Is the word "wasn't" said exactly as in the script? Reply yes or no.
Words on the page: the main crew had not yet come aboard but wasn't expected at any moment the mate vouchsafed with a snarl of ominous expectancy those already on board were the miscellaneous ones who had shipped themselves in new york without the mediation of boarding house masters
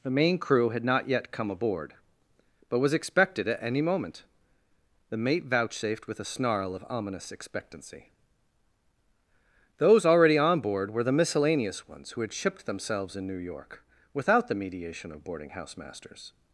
no